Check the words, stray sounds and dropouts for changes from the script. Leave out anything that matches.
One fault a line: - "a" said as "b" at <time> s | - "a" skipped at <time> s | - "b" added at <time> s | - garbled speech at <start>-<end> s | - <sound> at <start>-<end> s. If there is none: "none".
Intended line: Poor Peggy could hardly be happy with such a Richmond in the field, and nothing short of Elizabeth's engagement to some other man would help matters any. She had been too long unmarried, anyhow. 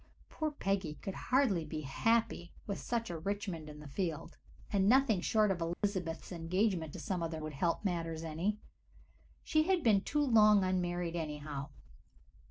- dropout at 5.7-5.8 s
- "man" skipped at 7.4 s